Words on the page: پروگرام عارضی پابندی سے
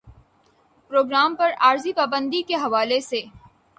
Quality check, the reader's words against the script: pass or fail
fail